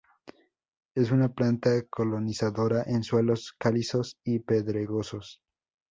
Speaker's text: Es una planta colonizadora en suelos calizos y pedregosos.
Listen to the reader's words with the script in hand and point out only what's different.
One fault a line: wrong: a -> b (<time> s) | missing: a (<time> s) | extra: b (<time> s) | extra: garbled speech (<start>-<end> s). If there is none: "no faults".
no faults